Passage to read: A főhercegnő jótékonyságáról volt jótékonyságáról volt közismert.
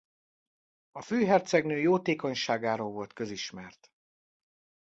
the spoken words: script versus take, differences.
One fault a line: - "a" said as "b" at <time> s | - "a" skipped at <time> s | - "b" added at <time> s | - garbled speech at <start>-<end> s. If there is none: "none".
- "jótékonyságáról volt" skipped at 3.1 s